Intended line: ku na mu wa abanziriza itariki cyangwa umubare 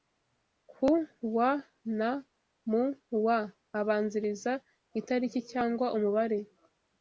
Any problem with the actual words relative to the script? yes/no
yes